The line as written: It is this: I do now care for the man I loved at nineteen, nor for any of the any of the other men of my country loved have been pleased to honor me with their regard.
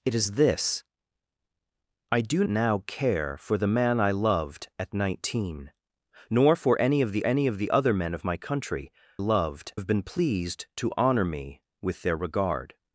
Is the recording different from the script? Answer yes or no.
no